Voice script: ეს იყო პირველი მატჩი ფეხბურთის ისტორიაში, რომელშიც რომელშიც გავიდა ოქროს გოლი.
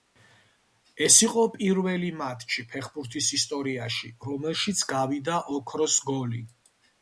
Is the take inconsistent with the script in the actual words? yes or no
yes